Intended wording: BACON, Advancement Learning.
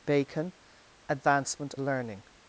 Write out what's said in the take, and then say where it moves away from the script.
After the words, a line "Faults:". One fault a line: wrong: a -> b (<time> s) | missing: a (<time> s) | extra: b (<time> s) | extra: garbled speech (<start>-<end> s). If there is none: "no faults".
BACON, Advancement Learning.
Faults:
no faults